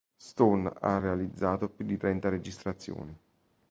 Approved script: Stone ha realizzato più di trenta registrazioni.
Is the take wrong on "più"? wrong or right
right